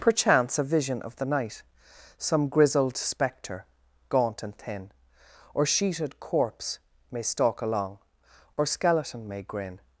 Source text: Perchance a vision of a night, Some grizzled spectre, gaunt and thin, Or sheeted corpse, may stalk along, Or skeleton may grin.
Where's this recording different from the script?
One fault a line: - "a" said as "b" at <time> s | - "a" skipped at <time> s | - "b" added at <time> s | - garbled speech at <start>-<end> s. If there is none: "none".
- "a" said as "the" at 1.2 s